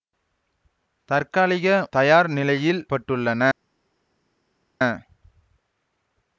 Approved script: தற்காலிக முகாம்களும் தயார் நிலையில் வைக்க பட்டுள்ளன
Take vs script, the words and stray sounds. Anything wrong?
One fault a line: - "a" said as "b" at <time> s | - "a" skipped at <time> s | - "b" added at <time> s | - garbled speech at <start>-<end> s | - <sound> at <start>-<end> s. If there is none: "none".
- "முகாம்களும்" skipped at 1.7 s
- "வைக்க" skipped at 2.8 s